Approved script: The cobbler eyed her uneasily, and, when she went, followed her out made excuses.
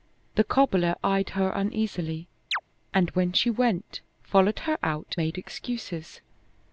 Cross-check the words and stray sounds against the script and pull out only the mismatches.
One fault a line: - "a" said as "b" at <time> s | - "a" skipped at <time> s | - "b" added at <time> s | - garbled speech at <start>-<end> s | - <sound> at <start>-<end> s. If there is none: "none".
- chirp at 2.5-2.6 s